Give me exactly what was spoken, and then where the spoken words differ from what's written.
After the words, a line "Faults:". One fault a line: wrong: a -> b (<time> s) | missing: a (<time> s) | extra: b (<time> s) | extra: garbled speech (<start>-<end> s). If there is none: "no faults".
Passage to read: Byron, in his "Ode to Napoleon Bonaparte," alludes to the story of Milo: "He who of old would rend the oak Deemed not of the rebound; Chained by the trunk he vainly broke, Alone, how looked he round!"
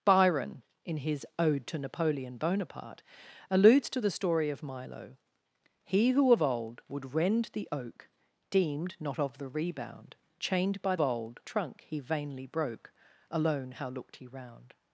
Byron, in his "Ode to Napoleon Bonaparte," alludes to the story of Milo: "He who of old would rend the oak Deemed not of the rebound; Chained by old trunk he vainly broke, Alone, how looked he round!"
Faults:
wrong: the -> old (11.0 s)